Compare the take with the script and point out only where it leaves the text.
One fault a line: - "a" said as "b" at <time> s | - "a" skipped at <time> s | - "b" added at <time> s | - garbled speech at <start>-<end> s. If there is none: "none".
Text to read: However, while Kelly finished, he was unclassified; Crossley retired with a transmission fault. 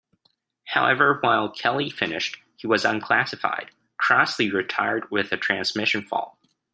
none